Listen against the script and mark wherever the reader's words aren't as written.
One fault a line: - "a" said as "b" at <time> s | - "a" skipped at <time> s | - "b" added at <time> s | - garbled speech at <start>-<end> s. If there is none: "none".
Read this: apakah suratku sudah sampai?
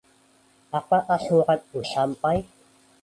- "sudah" skipped at 1.8 s